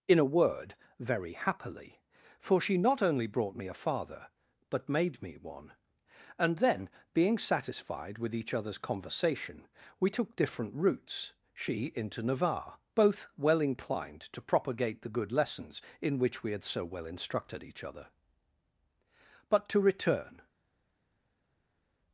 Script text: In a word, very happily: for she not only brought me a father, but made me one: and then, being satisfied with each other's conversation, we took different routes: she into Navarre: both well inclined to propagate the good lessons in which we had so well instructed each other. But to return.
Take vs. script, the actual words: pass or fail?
pass